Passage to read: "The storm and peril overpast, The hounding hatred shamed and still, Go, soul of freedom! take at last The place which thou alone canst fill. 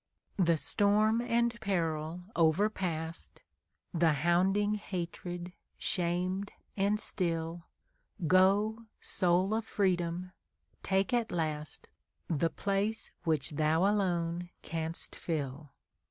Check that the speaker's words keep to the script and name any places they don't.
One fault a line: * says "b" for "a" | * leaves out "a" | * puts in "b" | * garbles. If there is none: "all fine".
all fine